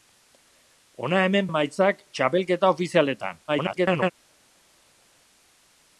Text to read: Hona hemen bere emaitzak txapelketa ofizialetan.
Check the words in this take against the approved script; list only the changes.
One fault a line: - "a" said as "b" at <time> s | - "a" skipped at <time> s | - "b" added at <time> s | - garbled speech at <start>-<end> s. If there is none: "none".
- "bere" skipped at 1.5 s
- garbled speech at 3.5-4.1 s